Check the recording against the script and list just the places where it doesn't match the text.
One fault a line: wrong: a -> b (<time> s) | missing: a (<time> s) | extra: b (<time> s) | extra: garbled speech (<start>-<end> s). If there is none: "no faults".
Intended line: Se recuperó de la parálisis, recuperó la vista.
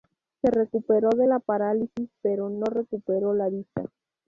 extra: pero no (2.2 s)